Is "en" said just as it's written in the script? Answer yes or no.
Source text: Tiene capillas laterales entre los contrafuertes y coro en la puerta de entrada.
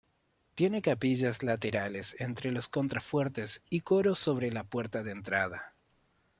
no